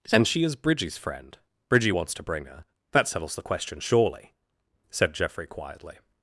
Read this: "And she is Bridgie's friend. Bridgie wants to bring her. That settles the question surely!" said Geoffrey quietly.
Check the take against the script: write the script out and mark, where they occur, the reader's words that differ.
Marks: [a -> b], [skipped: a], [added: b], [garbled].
"And she is Bridgie's friend. Bridgie wants to bring her. That settles the question surely!" said Geoffrey quietly.